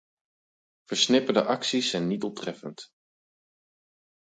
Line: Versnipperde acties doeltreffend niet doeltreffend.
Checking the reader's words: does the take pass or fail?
fail